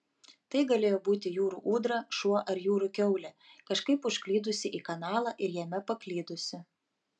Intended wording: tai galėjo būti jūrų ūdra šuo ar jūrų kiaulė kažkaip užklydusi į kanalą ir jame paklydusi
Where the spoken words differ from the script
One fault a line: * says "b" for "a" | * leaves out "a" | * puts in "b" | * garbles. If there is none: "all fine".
all fine